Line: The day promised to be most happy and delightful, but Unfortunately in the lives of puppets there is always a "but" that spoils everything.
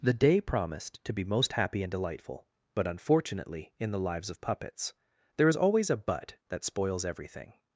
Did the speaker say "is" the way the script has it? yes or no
yes